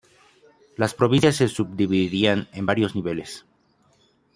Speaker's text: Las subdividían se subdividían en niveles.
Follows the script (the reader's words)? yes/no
no